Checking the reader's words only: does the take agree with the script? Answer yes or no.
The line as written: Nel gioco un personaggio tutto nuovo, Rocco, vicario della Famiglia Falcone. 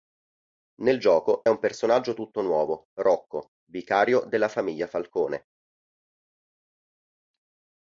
yes